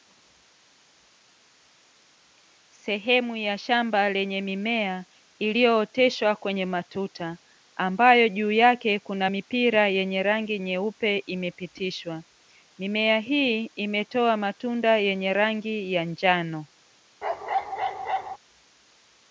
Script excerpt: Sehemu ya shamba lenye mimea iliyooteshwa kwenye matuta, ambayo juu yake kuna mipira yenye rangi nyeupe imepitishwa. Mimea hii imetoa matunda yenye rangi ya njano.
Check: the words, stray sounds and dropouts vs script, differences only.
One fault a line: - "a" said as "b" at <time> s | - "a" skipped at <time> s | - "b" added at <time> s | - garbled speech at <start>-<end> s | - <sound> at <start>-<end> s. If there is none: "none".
- bark at 17.2-18.4 s